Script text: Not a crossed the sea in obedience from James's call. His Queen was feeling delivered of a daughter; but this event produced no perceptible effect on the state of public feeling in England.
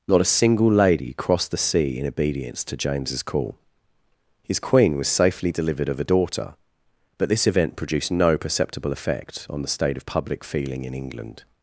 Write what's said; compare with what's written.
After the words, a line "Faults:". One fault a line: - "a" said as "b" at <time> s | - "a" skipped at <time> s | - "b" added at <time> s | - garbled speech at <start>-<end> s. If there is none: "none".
Not a single lady crossed the sea in obedience to James's call. His Queen was safely delivered of a daughter; but this event produced no perceptible effect on the state of public feeling in England.
Faults:
- "single lady" added at 0.2 s
- "from" said as "to" at 2.6 s
- "feeling" said as "safely" at 5.1 s